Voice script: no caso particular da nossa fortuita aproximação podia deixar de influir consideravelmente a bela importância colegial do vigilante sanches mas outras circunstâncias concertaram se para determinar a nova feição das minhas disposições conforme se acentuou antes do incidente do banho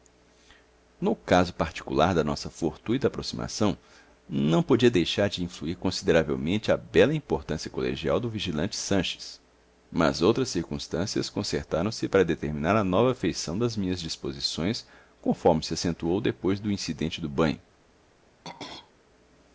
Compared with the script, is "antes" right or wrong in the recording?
wrong